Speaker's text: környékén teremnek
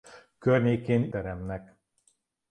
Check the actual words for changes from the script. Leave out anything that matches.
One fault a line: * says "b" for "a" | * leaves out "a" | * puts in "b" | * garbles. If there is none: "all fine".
all fine